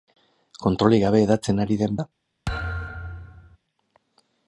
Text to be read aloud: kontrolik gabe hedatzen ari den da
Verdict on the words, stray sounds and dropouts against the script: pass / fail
fail